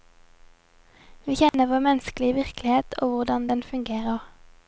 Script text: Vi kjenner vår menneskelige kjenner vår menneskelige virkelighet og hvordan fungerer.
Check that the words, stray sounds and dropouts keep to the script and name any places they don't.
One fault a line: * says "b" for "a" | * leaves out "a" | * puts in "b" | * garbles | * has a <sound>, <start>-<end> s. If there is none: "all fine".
* has a dropout, 1.5-1.5 s
* leaves out "kjenner vår menneskelige"
* puts in "den"